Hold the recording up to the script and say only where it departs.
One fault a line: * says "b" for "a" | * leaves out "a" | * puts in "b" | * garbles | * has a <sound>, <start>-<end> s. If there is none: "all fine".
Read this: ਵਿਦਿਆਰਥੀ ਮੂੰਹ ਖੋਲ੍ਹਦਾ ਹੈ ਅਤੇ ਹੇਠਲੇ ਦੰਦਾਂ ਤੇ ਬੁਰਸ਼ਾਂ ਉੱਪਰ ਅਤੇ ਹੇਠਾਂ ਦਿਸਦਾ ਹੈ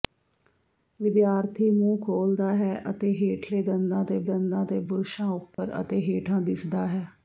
* puts in "ਦੰਦਾਂ ਤੇ"
* has a dropout, 5.5-5.6 s